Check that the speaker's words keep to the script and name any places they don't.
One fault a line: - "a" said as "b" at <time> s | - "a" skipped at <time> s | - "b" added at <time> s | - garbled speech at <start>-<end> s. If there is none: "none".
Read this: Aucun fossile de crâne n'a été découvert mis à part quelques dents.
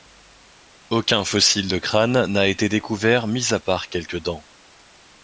none